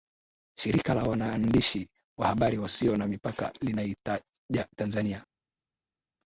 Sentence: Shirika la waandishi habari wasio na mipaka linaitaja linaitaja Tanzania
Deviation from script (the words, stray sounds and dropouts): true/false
true